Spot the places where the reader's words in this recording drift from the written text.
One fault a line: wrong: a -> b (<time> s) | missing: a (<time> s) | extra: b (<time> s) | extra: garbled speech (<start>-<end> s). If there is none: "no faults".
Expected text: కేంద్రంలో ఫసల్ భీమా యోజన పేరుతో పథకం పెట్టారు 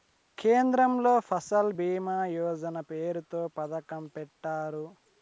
no faults